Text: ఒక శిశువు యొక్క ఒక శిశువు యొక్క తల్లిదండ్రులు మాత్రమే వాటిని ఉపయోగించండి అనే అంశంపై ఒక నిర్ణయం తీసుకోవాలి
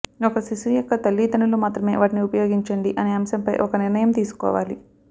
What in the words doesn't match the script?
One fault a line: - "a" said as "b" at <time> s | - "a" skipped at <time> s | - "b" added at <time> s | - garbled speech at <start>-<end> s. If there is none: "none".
- "ఒక శిశువు యొక్క" skipped at 0.9 s